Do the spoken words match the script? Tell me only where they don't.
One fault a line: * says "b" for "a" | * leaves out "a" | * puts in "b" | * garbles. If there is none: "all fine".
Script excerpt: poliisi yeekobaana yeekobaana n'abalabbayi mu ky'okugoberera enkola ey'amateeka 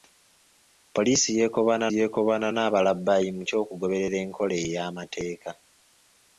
all fine